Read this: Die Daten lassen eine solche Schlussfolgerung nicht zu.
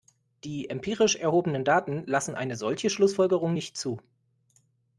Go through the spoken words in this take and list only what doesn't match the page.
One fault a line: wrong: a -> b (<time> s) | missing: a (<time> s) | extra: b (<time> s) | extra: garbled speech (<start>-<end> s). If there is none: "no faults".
extra: empirisch erhobenen (0.7 s)